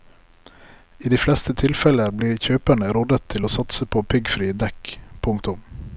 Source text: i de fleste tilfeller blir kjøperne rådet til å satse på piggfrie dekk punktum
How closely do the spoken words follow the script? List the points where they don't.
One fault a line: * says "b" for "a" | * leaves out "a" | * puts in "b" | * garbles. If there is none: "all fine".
all fine